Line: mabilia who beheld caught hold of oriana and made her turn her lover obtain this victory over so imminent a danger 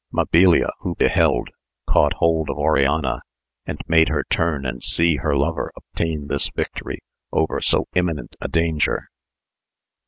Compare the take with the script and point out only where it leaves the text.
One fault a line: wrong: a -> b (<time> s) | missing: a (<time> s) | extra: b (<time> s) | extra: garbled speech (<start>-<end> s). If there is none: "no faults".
extra: and see (4.7 s)